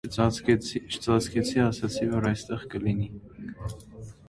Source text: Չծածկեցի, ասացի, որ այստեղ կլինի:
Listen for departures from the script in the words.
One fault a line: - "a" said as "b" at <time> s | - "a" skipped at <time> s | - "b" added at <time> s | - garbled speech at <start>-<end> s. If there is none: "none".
none